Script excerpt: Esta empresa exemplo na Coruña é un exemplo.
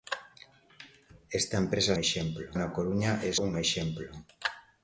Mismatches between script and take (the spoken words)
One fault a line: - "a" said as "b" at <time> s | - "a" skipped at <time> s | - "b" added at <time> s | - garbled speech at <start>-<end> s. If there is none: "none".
none